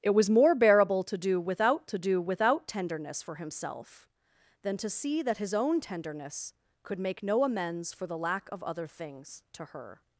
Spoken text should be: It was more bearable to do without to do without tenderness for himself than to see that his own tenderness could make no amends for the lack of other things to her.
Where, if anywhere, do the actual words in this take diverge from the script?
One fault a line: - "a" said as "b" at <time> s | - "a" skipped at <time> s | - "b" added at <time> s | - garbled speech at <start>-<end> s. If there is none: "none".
none